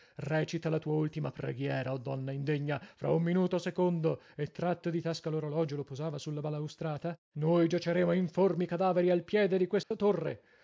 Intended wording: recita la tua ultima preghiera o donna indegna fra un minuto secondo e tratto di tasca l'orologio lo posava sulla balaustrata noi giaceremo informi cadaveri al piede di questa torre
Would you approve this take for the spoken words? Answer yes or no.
yes